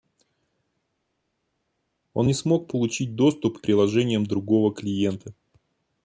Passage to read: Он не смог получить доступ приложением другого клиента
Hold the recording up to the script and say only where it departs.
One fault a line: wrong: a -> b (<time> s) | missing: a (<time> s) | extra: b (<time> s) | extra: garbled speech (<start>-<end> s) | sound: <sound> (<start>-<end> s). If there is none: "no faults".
no faults